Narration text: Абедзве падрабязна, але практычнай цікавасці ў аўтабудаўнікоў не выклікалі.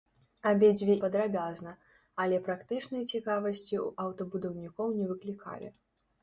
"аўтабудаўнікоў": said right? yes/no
yes